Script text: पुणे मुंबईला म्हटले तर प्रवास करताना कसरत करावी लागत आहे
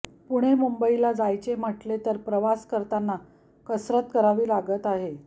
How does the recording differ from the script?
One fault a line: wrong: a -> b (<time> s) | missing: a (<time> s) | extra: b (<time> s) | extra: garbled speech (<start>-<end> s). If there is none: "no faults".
extra: जायचे (1.1 s)